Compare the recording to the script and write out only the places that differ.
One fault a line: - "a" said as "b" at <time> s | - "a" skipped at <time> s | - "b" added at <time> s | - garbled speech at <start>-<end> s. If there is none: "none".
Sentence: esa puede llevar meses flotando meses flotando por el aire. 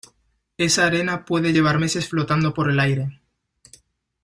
- "arena" added at 0.9 s
- "meses flotando" skipped at 2.5 s